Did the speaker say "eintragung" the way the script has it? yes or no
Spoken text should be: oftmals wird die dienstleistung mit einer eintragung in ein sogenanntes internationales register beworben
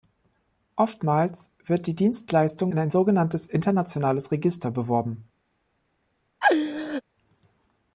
no